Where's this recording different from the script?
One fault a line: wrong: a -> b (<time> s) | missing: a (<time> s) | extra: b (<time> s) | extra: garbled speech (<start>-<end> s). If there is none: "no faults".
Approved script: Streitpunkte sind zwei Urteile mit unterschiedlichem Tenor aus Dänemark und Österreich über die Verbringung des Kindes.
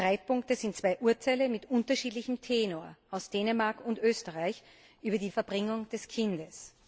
no faults